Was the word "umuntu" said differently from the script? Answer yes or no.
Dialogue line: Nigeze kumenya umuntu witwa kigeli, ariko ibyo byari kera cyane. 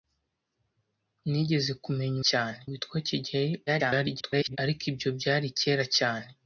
yes